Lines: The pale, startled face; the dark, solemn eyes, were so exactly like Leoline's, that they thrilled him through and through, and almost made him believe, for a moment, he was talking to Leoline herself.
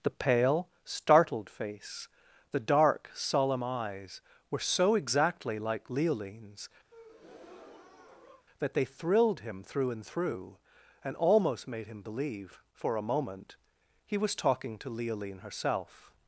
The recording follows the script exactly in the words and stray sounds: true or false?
false